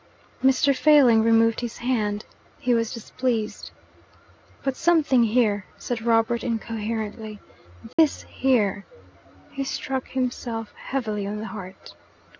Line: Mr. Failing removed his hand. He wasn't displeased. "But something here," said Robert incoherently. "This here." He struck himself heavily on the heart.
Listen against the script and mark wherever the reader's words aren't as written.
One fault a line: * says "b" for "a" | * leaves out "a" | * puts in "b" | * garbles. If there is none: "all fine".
* says "was" for "wasn't"